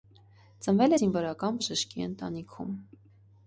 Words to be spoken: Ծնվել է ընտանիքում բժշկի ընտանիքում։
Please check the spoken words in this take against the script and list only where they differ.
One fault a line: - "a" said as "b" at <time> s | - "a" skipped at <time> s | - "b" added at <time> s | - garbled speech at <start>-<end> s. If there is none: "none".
- "ընտանիքում" said as "զինվորական" at 1.0 s